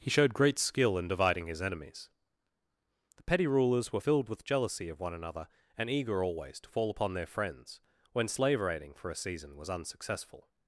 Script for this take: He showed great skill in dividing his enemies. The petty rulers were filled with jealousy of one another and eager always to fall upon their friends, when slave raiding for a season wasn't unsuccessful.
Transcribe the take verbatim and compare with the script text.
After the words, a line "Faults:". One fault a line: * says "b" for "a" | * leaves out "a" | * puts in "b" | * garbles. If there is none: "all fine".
He showed great skill in dividing his enemies. The petty rulers were filled with jealousy of one another and eager always to fall upon their friends, when slave raiding for a season was unsuccessful.
Faults:
* says "was" for "wasn't"